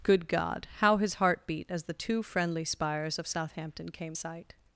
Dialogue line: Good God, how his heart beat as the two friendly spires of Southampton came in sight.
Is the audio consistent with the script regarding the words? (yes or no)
no